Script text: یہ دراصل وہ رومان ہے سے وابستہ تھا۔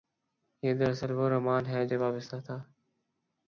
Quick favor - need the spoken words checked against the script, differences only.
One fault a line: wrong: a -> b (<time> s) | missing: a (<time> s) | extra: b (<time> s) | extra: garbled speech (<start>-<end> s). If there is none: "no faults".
no faults